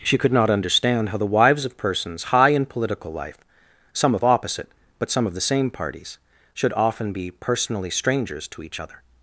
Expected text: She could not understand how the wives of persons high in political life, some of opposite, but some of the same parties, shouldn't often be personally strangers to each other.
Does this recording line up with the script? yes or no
no